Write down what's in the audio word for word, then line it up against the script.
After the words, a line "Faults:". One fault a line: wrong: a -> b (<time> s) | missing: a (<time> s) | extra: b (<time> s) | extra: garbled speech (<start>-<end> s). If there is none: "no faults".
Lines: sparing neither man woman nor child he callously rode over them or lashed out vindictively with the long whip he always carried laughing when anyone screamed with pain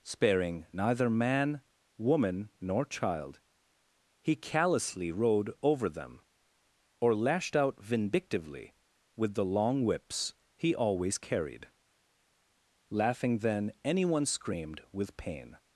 sparing neither man woman nor child he callously rode over them or lashed out vindictively with the long whips he always carried laughing then anyone screamed with pain
Faults:
wrong: whip -> whips (9.8 s)
wrong: when -> then (13.4 s)